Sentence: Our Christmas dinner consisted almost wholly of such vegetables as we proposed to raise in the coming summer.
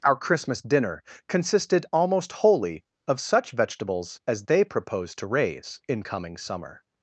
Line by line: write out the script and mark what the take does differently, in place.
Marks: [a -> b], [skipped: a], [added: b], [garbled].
Our Christmas dinner consisted almost wholly of such vegetables as [we -> they] proposed to raise in [skipped: the] coming summer.